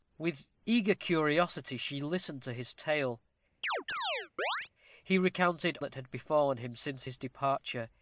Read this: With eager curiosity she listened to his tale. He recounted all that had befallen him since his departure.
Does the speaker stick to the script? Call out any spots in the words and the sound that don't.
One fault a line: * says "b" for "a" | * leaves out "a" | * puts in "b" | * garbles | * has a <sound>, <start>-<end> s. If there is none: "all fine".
* has a chirp, 3.6-4.7 s
* leaves out "all"